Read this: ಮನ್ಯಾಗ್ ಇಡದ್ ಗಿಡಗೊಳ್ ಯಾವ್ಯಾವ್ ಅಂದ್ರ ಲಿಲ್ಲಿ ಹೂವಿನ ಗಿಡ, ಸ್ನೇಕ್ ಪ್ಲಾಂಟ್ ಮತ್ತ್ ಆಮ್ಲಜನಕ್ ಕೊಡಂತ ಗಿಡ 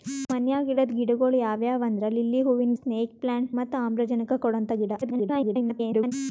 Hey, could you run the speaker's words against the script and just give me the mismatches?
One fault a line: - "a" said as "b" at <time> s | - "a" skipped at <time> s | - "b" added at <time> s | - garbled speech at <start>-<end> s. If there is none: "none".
- "ಗಿಡ" skipped at 2.7 s
- garbled speech at 5.0-6.1 s